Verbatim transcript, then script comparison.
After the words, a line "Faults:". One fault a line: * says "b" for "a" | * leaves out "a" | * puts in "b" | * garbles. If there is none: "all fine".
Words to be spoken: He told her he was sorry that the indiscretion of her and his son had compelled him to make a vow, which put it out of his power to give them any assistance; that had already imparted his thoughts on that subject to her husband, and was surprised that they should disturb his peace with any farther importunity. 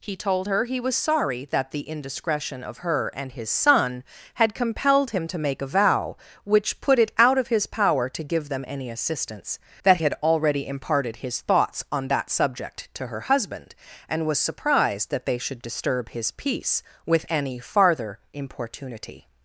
He told her he was sorry that the indiscretion of her and his son had compelled him to make a vow, which put it out of his power to give them any assistance; that had already imparted his thoughts on that subject to her husband, and was surprised that they should disturb his peace with any farther importunity.
Faults:
all fine